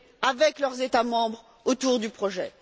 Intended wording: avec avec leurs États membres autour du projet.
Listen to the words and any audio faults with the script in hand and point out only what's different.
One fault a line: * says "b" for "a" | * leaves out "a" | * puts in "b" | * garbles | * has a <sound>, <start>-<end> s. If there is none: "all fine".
* leaves out "avec"